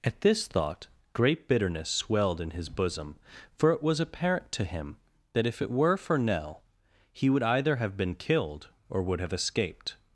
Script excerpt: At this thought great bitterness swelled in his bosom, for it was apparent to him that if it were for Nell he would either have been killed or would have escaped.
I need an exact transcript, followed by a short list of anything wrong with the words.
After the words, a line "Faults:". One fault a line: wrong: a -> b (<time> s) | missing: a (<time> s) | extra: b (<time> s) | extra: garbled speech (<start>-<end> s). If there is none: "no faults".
At this thought great bitterness swelled in his bosom, for it was apparent to him that if it were for Nell he would either have been killed or would have escaped.
Faults:
no faults